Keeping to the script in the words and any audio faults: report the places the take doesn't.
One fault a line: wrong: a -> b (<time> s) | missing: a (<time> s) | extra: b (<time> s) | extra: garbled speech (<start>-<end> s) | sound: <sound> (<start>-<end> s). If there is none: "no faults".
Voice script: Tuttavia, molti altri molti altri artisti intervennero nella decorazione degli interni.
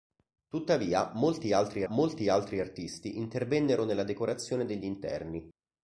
no faults